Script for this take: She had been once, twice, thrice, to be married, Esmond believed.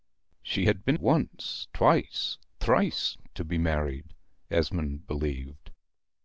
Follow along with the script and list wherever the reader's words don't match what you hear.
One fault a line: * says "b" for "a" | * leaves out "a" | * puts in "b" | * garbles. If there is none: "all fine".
all fine